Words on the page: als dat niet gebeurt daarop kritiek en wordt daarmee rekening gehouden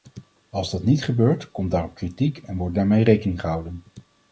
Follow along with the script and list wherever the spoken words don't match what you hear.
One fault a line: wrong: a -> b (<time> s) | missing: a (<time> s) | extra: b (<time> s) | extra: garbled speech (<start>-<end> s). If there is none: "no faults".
extra: komt (1.5 s)